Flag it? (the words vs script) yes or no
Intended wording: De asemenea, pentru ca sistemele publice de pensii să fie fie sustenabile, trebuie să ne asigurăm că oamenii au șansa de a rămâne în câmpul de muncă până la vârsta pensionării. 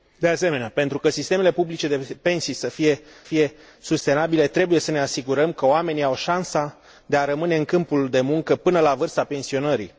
no